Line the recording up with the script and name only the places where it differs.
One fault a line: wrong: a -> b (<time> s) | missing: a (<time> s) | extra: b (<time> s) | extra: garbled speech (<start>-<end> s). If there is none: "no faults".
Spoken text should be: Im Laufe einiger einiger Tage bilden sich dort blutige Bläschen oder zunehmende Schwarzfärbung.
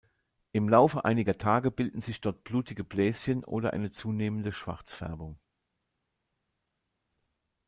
missing: einiger (1.4 s)
extra: eine (3.7 s)